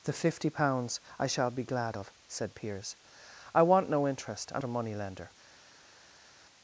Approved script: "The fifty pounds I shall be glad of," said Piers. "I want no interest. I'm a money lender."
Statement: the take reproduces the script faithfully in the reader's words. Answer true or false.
true